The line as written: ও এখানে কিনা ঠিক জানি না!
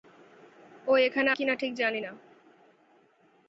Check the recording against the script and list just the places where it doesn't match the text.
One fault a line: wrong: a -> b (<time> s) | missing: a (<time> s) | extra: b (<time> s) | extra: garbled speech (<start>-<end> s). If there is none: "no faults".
no faults